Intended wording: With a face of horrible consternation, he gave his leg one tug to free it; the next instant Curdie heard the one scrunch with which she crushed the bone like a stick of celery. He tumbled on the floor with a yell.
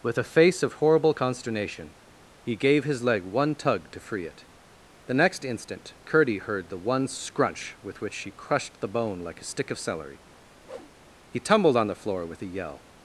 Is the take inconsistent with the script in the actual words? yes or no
no